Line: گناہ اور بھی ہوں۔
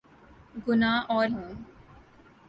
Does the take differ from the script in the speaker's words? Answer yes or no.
yes